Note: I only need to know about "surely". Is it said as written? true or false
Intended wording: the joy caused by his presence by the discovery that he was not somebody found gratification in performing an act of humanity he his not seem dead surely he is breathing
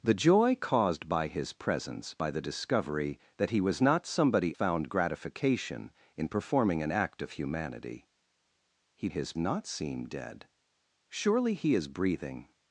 true